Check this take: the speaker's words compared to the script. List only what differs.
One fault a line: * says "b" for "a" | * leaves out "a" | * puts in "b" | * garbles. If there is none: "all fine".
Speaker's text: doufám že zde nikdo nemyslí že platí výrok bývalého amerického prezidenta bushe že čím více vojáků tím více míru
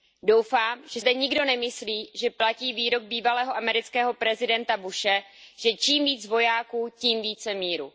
all fine